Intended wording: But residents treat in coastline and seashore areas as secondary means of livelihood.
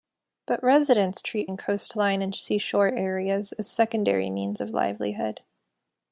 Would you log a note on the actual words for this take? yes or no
no